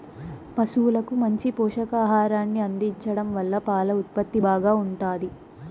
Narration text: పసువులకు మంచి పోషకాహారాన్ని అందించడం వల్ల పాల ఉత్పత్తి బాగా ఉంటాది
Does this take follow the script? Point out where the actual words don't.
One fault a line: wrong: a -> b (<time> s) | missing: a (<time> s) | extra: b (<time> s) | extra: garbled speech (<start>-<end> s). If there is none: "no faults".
no faults